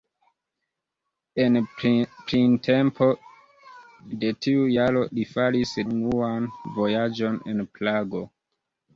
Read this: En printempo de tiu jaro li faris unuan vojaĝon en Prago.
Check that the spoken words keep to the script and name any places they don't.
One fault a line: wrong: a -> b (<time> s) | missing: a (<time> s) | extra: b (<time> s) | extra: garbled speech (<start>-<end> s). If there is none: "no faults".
no faults